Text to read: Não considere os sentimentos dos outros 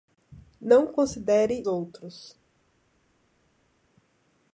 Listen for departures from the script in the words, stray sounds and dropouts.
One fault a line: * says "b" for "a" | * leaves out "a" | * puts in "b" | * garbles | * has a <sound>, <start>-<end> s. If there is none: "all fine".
* leaves out "os sentimentos dos"